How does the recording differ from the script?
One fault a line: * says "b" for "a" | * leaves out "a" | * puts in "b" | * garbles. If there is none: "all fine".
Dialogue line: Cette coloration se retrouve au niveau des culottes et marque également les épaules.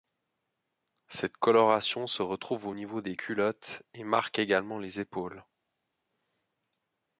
all fine